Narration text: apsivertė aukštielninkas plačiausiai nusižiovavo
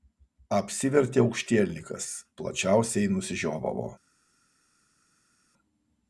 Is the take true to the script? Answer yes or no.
yes